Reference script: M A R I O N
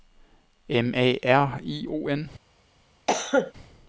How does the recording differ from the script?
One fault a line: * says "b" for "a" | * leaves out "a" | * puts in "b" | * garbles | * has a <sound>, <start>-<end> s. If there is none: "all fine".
* has a cough, 3.1-3.5 s